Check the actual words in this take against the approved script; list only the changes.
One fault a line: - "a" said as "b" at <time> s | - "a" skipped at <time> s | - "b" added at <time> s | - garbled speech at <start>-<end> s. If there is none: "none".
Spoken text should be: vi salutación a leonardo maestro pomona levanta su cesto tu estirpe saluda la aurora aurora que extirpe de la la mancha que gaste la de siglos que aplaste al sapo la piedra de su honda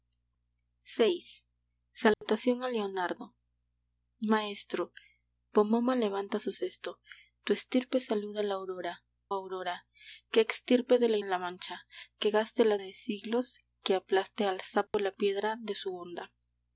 none